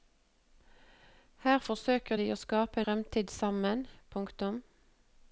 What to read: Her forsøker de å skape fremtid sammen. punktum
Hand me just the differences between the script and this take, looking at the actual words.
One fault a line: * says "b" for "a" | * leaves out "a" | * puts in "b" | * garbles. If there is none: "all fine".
all fine